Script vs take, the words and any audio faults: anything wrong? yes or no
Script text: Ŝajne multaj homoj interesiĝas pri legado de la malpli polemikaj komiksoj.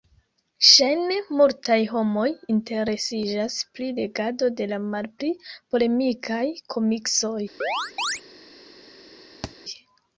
yes